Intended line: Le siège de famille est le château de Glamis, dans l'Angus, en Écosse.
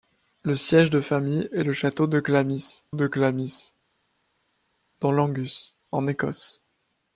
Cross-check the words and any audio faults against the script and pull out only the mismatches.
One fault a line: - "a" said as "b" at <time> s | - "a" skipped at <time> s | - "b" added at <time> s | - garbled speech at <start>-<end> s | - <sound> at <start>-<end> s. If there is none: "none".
- "de Glamis" added at 2.9 s